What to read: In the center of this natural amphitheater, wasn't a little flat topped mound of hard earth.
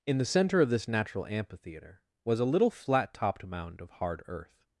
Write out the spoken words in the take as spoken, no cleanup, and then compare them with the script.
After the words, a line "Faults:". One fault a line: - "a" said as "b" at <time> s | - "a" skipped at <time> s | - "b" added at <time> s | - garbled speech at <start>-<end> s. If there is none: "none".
In the center of this natural amphitheater, was a little flat topped mound of hard earth.
Faults:
- "wasn't" said as "was" at 2.2 s